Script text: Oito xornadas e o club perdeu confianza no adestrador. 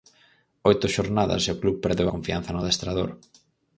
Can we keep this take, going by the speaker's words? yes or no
yes